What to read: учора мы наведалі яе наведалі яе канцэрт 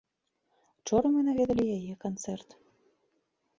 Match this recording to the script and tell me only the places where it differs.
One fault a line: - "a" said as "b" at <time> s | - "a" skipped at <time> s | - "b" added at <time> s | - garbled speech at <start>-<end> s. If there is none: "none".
- "наведалі яе" skipped at 1.9 s